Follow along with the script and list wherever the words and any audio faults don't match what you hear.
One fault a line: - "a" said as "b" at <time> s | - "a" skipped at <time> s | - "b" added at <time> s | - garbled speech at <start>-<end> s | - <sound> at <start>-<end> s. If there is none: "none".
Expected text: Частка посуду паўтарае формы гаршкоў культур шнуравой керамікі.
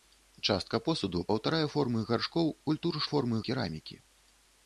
- "шнуравой" said as "формы" at 3.1 s